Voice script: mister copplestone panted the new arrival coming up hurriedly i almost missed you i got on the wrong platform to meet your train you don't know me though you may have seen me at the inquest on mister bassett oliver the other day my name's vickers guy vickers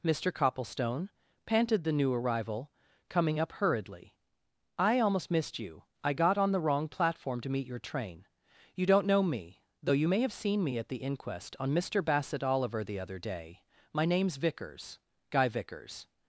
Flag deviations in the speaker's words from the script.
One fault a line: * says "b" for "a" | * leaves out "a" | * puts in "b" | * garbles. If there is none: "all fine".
all fine